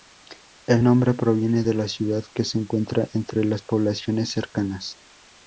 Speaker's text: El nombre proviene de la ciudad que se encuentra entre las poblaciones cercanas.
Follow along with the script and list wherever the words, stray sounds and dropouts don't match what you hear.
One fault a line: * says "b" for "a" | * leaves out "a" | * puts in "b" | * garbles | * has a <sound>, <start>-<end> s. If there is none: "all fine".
all fine